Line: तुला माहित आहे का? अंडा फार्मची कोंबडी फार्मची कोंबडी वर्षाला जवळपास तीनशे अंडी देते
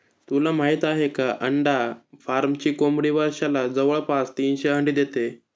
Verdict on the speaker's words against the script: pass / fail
fail